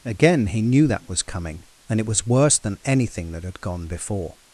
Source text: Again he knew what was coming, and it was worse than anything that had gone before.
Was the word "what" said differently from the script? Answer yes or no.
yes